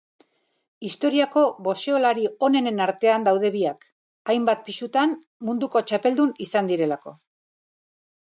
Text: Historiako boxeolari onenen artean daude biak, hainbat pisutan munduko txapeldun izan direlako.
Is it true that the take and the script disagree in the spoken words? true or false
false